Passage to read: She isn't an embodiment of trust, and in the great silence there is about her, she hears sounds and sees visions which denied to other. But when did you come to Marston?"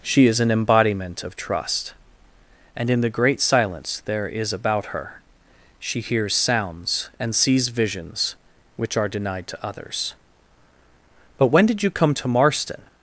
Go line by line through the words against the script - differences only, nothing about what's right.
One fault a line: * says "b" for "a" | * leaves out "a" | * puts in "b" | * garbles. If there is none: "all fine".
* says "is" for "isn't"
* puts in "are"
* says "others" for "other"